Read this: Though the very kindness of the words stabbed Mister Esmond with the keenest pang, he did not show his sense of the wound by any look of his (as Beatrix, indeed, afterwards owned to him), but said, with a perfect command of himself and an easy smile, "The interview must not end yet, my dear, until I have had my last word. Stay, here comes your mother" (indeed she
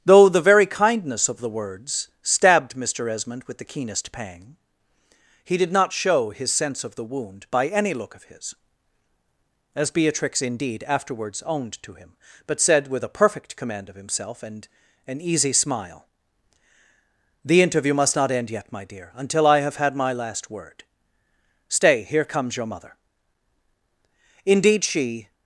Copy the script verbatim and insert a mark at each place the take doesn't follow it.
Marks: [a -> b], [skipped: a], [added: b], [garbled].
Though the very kindness of the words stabbed Mister Esmond with the keenest pang, he did not show his sense of the wound by any look of his (as Beatrix, indeed, afterwards owned to him), but said, with a perfect command of himself and an easy smile, "The interview must not end yet, my dear, until I have had my last word. Stay, here comes your mother" (indeed she